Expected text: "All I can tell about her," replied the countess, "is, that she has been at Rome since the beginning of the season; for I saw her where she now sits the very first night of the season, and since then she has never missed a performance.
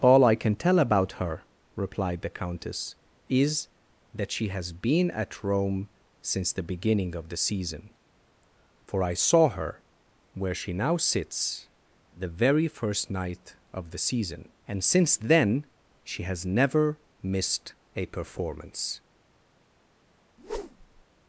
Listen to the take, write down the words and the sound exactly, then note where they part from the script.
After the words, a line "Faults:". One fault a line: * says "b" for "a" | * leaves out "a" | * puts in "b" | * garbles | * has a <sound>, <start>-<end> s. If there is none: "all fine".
"All I can tell about her," replied the countess, "is, that she has been at Rome since the beginning of the season; for I saw her where she now sits the very first night of the season, and since then she has never missed a performance.
Faults:
* has a whoosh, 20.4-21.1 s